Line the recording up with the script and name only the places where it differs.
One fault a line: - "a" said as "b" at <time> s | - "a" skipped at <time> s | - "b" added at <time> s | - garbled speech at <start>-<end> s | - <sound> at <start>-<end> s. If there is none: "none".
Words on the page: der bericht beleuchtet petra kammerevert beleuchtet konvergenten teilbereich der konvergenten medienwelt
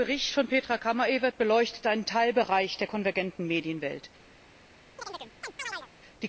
- "beleuchtet" said as "von" at 0.3 s
- "konvergenten" said as "einen" at 1.9 s
- chirp at 5.0-5.9 s